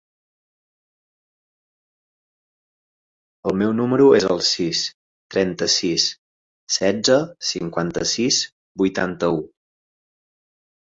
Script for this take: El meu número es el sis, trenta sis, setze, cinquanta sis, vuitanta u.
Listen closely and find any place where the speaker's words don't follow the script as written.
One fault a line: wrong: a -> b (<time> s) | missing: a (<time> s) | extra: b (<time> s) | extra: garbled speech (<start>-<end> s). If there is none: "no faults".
no faults